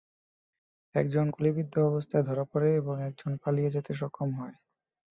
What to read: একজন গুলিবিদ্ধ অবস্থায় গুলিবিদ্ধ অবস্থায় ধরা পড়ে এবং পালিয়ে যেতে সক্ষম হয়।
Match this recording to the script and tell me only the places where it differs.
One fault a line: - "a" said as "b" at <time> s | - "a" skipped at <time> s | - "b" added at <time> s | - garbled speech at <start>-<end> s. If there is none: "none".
- "গুলিবিদ্ধ অবস্থায়" skipped at 2.2 s
- "একজন" added at 3.0 s